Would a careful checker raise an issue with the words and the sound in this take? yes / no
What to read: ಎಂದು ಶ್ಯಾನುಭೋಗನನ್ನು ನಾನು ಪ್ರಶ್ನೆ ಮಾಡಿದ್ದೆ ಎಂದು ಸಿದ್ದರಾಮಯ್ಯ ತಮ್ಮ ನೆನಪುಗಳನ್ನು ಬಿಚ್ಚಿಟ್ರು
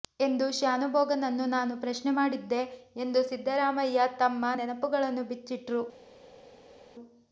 no